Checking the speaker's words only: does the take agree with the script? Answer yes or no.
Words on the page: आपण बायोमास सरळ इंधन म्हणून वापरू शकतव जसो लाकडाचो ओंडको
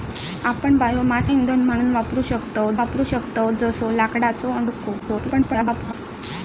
no